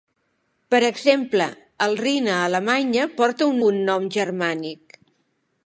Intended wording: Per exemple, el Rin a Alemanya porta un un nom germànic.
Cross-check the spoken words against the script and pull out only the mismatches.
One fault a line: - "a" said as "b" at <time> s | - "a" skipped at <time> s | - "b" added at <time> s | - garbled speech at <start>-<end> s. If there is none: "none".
none